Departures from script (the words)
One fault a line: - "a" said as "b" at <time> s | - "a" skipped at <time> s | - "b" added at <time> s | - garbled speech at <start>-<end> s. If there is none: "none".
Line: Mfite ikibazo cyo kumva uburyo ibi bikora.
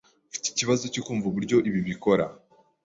none